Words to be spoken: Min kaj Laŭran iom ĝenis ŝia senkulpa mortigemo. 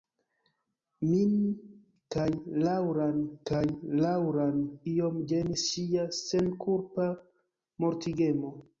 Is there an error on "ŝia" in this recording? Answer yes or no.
no